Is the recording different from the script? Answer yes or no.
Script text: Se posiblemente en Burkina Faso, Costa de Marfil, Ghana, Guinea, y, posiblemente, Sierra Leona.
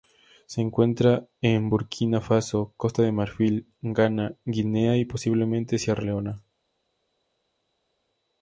yes